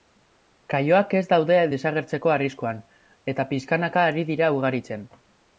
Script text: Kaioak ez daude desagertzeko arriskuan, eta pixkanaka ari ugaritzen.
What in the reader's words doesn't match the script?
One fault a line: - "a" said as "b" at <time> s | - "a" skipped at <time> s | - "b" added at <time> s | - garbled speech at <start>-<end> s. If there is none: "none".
- "dira" added at 4.3 s